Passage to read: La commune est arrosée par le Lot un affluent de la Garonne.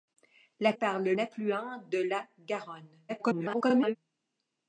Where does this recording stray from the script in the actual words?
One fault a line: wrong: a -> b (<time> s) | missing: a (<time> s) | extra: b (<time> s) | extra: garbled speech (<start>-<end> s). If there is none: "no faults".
missing: commune est arrosée (0.7 s)
missing: Lot un (1.2 s)
extra: garbled speech (3.1-4.0 s)